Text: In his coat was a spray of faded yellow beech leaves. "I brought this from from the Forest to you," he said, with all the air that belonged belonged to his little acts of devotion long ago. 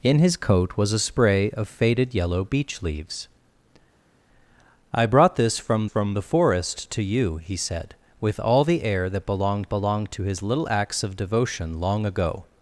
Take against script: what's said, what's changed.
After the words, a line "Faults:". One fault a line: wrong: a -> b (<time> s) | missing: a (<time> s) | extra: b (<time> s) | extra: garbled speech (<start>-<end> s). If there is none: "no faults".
In his coat was a spray of faded yellow beech leaves. "I brought this from from the Forest to you," he said, with all the air that belonged belonged to his little acts of devotion long ago.
Faults:
no faults